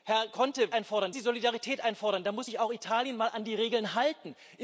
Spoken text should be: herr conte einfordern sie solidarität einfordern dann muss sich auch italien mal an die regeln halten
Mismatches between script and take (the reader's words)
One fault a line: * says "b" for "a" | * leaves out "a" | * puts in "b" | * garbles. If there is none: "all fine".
all fine